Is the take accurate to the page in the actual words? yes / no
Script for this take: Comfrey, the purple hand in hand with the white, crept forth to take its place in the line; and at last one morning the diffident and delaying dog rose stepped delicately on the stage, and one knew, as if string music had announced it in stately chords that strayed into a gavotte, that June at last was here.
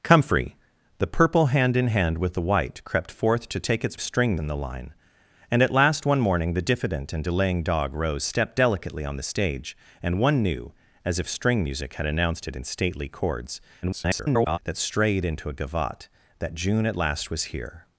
no